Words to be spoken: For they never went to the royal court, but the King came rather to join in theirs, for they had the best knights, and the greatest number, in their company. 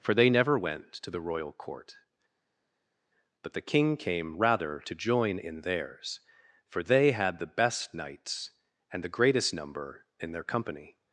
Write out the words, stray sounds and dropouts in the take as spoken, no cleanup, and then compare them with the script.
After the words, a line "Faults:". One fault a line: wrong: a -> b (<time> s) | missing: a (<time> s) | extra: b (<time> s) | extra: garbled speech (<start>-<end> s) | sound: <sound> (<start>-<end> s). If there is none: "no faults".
For they never went to the royal court, but the King came rather to join in theirs, for they had the best knights, and the greatest number, in their company.
Faults:
no faults